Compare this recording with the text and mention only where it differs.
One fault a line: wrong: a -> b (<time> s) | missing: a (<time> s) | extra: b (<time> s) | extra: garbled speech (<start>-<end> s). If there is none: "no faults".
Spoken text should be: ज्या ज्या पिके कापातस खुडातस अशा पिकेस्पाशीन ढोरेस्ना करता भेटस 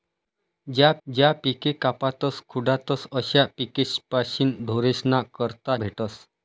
no faults